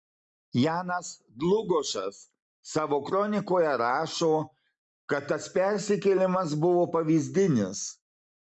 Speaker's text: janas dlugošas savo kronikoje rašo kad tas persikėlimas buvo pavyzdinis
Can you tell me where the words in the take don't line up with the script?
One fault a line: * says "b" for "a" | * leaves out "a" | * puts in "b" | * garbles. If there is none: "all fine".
all fine